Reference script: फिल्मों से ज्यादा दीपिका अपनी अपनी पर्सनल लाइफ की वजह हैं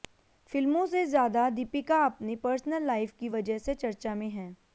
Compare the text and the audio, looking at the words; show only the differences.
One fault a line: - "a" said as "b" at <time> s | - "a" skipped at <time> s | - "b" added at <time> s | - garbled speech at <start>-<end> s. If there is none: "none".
- "अपनी" skipped at 2.4 s
- "से चर्चा में" added at 3.6 s